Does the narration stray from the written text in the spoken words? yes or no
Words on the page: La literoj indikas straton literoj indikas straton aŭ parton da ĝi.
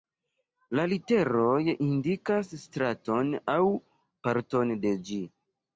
yes